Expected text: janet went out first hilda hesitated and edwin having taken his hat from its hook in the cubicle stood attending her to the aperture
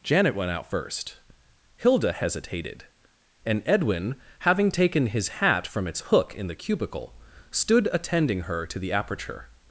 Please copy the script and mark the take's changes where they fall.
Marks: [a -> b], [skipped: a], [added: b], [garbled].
janet went out first hilda hesitated and edwin having taken his hat from its hook in the cubicle stood attending her to the aperture